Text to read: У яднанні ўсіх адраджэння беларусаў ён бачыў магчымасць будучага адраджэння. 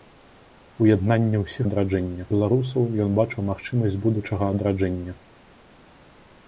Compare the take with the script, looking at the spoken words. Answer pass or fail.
pass